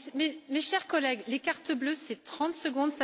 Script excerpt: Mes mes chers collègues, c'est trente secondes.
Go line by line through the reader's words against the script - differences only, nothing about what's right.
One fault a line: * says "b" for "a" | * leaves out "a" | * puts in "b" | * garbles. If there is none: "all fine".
* leaves out "mes"
* puts in "les cartons bleus"